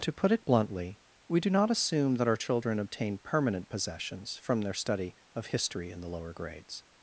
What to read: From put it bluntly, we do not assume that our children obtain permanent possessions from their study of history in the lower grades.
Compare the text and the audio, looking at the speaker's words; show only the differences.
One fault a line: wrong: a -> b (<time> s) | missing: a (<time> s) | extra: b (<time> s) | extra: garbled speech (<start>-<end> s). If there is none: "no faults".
wrong: From -> To (0.0 s)